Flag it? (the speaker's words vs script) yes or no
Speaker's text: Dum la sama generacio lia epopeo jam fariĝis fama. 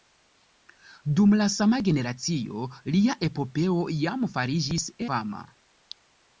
no